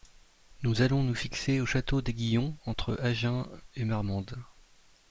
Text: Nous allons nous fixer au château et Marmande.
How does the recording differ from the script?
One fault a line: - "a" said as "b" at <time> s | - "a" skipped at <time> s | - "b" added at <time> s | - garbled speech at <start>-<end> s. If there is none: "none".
- "d'Aiguillon entre Agen" added at 2.0 s